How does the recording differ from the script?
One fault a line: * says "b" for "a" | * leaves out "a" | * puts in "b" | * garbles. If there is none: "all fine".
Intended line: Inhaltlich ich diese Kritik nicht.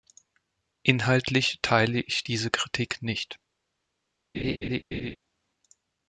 * puts in "teile"